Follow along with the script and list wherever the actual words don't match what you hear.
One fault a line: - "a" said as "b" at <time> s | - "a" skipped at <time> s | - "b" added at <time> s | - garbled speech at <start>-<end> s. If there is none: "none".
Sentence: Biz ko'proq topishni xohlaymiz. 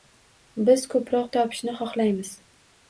none